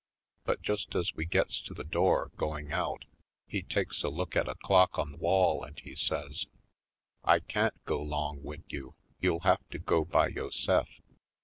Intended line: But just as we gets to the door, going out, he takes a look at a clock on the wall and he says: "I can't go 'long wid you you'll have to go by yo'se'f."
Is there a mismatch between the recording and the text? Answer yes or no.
no